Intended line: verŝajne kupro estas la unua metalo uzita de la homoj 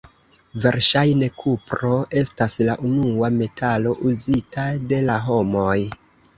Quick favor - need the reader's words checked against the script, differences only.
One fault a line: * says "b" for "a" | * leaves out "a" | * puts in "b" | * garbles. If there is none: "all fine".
all fine